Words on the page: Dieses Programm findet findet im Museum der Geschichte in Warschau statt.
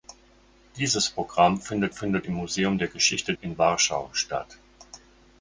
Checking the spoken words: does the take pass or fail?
pass